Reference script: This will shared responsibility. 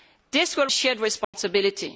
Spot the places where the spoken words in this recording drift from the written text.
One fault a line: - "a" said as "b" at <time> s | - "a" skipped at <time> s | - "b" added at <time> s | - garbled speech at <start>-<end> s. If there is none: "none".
none